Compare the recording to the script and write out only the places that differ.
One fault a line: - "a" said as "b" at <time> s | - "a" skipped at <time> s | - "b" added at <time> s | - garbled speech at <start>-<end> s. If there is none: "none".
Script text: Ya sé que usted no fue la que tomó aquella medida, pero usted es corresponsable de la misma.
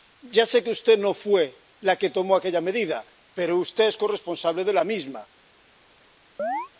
none